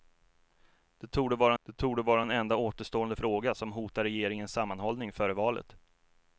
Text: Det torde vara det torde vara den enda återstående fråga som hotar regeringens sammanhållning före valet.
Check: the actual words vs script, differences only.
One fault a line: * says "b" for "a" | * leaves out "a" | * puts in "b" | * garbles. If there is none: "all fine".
all fine